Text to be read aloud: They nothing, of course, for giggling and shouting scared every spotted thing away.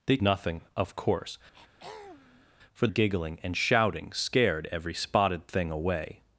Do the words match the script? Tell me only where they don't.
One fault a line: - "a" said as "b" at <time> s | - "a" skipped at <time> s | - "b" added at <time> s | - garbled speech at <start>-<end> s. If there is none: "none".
none